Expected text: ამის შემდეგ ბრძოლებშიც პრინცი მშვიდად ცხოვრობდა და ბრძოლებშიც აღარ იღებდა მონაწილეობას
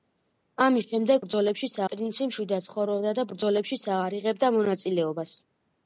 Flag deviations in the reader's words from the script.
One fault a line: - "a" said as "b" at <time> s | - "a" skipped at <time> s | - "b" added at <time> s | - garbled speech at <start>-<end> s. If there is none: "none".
none